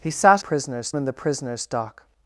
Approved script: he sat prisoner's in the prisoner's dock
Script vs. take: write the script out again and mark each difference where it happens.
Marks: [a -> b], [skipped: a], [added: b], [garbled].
he sat prisoner's in the prisoner's dock